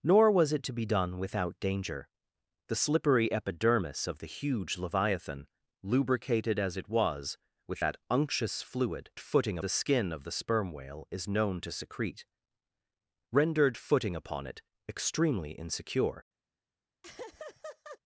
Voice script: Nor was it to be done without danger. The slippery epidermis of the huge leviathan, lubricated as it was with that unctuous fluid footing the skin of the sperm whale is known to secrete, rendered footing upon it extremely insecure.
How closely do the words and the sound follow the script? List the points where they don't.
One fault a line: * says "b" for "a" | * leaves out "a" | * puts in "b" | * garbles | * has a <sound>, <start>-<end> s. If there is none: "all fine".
* has a laugh, 17.0-18.0 s